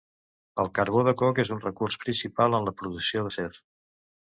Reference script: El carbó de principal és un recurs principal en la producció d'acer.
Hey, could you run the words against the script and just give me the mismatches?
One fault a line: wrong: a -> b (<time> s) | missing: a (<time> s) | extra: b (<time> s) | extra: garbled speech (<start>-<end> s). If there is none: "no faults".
wrong: principal -> coc (1.2 s)